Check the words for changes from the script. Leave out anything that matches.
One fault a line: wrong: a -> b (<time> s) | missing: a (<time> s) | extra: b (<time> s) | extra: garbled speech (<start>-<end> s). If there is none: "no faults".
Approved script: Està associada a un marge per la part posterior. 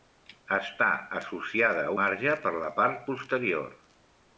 missing: un (1.9 s)